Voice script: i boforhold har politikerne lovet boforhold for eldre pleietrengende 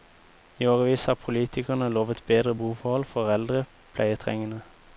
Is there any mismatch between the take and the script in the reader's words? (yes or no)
yes